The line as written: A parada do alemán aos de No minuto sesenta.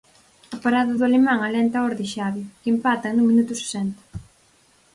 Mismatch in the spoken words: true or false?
true